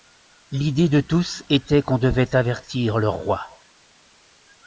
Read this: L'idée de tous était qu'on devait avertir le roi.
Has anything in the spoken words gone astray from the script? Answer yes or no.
no